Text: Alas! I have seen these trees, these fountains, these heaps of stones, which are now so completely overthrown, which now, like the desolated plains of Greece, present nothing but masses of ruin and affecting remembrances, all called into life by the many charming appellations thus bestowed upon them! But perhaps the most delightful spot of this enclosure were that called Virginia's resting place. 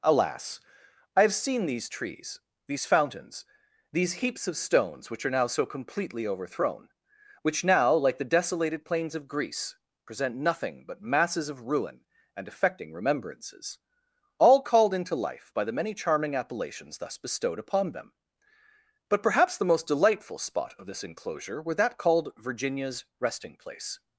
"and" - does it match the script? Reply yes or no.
yes